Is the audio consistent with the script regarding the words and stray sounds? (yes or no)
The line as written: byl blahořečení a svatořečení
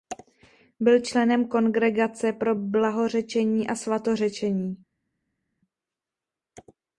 no